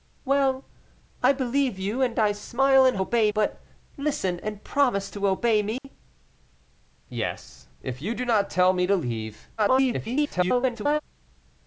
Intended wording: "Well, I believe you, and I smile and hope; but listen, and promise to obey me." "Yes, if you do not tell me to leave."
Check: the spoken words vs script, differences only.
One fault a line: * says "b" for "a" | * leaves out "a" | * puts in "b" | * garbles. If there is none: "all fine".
* says "obey" for "hope"
* garbles